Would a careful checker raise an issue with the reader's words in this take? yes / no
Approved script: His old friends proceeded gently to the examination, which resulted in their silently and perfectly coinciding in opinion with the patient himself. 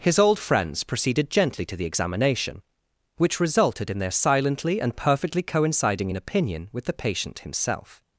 no